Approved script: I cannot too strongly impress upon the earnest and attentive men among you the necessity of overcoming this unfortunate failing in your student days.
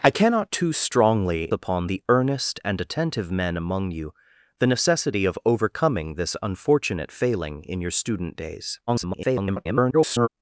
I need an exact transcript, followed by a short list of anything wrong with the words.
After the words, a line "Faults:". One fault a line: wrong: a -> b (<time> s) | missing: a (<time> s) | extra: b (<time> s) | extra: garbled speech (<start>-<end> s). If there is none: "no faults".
I cannot too strongly upon the earnest and attentive men among you the necessity of overcoming this unfortunate failing in your student days. [garbled]
Faults:
missing: impress (1.5 s)
extra: garbled speech (8.9-10.3 s)